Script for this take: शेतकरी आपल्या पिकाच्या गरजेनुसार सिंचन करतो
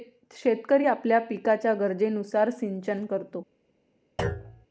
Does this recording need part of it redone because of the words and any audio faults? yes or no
yes